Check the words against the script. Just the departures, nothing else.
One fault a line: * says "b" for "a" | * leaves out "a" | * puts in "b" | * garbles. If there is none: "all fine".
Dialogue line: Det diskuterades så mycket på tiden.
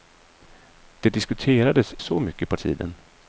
all fine